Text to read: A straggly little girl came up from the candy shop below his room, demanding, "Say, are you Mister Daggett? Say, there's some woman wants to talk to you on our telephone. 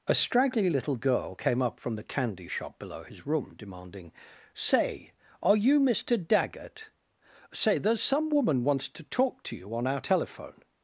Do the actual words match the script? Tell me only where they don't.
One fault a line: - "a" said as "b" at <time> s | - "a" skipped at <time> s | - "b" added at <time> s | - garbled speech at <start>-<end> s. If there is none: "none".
none